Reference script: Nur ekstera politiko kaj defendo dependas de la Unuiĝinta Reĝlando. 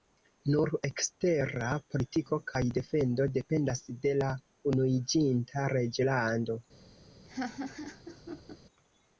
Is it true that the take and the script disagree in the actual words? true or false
false